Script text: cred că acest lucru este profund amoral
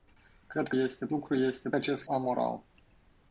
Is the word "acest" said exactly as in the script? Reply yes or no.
no